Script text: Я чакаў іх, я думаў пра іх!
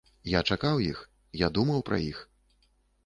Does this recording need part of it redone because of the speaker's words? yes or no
no